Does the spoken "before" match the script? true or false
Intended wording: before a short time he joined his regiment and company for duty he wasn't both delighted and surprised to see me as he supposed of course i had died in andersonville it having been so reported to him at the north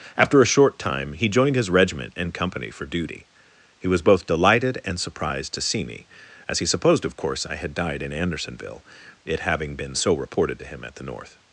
false